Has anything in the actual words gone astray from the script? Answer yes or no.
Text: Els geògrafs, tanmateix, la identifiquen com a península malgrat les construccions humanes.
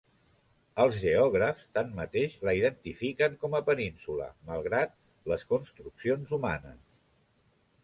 no